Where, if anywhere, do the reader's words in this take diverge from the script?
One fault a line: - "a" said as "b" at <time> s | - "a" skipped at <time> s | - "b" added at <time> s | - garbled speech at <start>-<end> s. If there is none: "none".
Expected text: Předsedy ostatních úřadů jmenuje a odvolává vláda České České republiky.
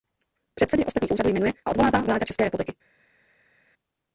- "České" skipped at 2.4 s